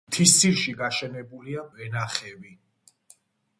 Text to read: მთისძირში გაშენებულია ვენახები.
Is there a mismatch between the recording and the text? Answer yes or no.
no